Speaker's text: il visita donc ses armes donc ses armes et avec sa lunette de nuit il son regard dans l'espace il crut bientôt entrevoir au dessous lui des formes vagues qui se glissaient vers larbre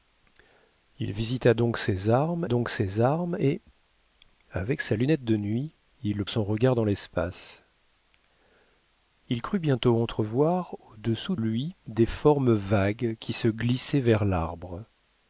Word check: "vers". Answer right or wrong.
right